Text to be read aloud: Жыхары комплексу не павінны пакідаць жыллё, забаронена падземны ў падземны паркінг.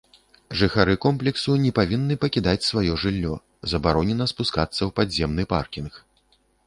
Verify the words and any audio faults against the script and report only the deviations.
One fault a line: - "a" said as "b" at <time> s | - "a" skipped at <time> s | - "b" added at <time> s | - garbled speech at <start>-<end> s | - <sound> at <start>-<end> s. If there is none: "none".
- "сваё" added at 2.7 s
- "падземны" said as "спускацца" at 4.3 s